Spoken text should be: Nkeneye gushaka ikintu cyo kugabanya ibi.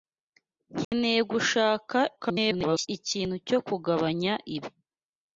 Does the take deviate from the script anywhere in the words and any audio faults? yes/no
yes